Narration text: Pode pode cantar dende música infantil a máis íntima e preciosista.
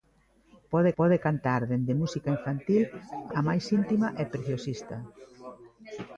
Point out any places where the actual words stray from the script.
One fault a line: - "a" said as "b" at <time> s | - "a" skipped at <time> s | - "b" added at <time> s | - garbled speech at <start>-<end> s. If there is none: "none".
none